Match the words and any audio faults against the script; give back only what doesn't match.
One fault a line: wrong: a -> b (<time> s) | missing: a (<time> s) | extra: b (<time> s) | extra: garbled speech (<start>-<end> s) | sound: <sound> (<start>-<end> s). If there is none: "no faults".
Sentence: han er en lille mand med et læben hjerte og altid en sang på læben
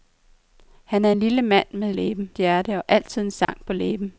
sound: dropout (3.4-3.5 s)